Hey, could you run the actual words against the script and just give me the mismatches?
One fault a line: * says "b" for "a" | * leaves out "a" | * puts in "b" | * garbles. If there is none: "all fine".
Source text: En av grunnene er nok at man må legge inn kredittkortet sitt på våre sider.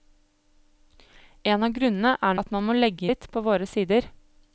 * leaves out "nok"
* leaves out "inn kredittkortet"